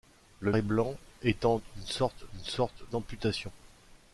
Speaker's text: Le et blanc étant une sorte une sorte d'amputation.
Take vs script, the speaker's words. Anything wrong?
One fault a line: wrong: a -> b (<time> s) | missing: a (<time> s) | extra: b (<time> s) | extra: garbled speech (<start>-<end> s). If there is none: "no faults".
no faults